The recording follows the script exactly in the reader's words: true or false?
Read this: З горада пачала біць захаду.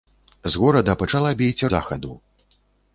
true